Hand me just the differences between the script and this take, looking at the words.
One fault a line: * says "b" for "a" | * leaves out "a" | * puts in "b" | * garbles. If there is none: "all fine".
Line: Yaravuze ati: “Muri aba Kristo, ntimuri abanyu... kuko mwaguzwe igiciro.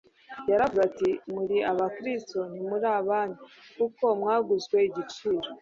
all fine